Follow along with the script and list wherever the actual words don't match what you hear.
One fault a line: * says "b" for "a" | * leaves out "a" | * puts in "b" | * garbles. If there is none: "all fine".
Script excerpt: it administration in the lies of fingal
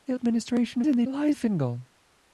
all fine